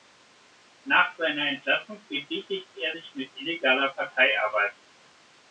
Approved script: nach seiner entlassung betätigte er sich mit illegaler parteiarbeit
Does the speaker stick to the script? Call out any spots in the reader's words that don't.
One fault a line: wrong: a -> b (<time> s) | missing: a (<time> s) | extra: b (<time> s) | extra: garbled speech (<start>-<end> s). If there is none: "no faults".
no faults